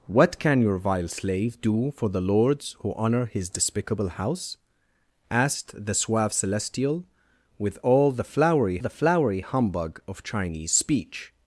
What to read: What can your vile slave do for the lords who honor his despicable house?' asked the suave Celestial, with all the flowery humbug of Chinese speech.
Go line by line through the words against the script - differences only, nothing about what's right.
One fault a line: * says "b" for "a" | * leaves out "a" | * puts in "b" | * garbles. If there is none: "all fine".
* puts in "the flowery"